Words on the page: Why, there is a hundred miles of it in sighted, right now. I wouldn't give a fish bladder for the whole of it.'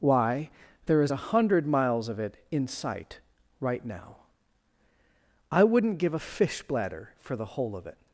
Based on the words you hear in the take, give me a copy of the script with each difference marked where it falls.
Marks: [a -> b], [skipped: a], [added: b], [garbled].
Why, there is a hundred miles of it in [sighted, -> sight] right now. I wouldn't give a fish bladder for the whole of it.'